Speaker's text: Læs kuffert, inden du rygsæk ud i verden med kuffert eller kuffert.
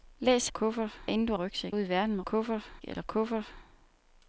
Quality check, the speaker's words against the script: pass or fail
pass